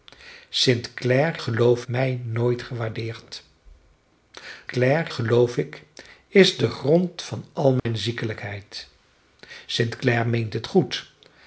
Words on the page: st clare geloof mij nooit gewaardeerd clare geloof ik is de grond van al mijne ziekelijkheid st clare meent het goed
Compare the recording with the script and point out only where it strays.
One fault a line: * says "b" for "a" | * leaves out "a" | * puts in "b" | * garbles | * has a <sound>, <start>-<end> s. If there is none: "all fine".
* has a dropout, 7.8-7.9 s